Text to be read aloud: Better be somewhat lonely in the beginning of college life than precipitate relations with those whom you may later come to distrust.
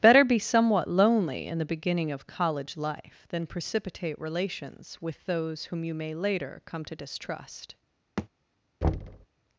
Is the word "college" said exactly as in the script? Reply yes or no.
yes